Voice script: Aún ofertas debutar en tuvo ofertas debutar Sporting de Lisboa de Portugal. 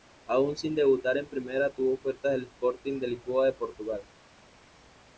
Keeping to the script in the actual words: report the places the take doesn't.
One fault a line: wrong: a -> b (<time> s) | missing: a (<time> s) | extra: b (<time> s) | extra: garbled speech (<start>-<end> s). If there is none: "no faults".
wrong: ofertas -> sin (0.6 s)
extra: primera (1.3 s)
wrong: debutar -> del (2.3 s)